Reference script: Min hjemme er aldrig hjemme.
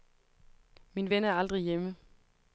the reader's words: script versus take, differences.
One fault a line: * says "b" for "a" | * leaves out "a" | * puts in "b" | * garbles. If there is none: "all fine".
* says "ven" for "hjemme"